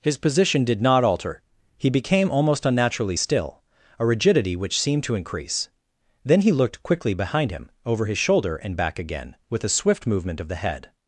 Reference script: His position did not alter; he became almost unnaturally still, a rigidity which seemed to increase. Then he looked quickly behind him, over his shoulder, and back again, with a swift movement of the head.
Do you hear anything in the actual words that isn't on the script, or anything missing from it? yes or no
no